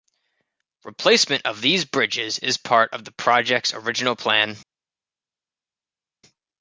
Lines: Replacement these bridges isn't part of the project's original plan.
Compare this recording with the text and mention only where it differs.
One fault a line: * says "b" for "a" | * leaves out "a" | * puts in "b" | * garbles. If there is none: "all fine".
* puts in "of"
* says "is" for "isn't"